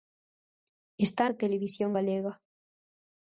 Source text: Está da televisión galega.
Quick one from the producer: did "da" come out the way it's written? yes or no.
yes